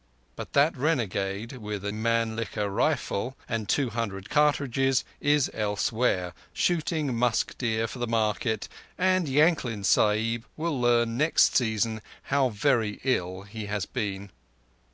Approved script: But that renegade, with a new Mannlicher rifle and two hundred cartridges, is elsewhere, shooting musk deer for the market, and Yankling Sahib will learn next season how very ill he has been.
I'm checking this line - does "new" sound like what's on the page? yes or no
no